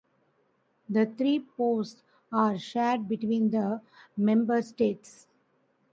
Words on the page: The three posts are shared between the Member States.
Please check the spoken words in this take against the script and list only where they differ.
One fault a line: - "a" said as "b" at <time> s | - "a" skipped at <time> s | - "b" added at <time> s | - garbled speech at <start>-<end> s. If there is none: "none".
none